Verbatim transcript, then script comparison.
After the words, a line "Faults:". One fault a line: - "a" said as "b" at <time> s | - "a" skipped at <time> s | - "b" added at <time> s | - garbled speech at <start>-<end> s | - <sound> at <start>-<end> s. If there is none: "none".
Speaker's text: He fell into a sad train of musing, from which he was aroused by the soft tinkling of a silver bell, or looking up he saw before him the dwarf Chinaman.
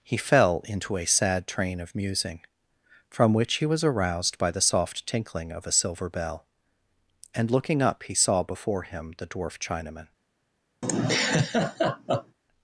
He fell into a sad train of musing, from which he was aroused by the soft tinkling of a silver bell, and looking up he saw before him the dwarf Chinaman.
Faults:
- "or" said as "and" at 7.3 s
- laugh at 10.8-12.4 s